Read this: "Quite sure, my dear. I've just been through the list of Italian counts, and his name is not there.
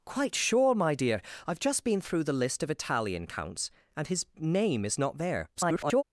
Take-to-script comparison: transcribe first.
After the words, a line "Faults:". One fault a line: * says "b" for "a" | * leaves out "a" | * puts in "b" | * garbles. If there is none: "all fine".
"Quite sure, my dear. I've just been through the list of Italian counts, and his name is not there. [garbled]
Faults:
* garbles